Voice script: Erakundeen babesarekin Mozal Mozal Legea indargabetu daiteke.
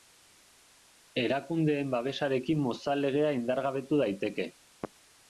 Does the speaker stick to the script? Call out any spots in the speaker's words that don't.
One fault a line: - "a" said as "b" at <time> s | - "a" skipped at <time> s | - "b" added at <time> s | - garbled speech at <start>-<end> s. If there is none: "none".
- "Mozal" skipped at 3.0 s